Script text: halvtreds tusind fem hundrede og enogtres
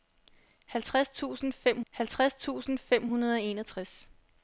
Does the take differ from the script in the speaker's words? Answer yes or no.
yes